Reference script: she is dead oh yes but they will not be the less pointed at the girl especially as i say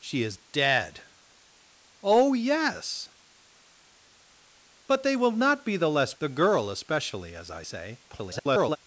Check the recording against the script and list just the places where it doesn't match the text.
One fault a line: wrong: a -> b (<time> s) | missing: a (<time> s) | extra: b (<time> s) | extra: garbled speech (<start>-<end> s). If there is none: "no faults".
missing: pointed at (6.1 s)
extra: garbled speech (8.1-8.8 s)